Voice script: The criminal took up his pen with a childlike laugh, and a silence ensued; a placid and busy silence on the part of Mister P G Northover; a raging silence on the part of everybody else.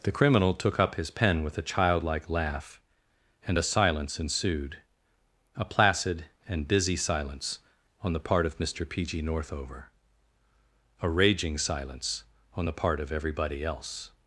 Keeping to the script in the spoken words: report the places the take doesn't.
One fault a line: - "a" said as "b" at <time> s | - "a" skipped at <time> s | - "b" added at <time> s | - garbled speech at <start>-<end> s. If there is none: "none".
none